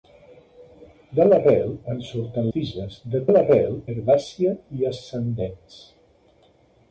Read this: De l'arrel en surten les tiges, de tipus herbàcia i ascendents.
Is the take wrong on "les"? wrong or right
wrong